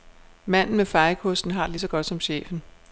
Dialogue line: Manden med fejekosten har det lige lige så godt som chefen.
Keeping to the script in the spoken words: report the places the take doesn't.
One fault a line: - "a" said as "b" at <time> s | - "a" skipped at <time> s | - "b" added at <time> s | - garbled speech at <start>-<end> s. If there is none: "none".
- "lige" skipped at 1.8 s